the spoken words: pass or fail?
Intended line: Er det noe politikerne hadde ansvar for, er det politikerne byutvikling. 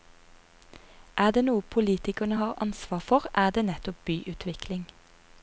fail